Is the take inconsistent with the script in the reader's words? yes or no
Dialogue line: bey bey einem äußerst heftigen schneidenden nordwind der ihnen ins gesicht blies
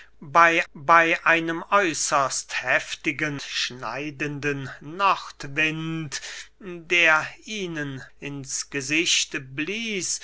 no